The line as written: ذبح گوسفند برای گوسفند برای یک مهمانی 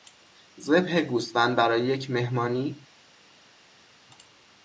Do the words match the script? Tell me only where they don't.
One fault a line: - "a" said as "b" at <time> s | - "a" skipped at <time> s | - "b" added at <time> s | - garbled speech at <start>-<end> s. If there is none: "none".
- "گوسفند برای" skipped at 1.9 s